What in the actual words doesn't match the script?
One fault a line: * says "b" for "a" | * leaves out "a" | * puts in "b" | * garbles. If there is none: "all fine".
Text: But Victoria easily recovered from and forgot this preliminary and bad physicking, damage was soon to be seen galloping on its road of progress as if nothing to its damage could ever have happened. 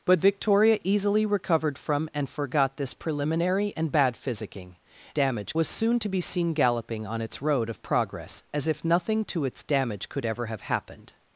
all fine